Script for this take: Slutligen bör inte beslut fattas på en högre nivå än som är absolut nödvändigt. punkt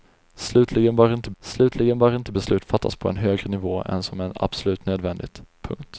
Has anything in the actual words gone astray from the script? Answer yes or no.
yes